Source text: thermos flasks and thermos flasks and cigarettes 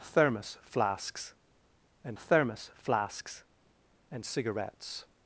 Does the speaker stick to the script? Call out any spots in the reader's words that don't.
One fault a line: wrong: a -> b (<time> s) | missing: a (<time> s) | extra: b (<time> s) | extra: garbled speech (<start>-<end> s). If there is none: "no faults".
no faults